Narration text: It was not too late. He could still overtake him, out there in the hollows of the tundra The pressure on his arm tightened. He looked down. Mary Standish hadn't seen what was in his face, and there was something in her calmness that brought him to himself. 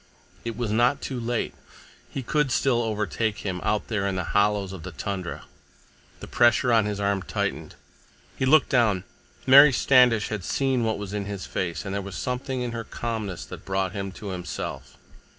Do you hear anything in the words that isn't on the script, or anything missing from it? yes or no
yes